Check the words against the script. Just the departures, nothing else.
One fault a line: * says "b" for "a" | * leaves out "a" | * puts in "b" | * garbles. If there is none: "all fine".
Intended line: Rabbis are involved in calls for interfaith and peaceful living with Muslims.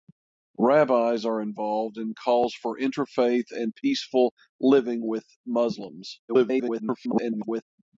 * garbles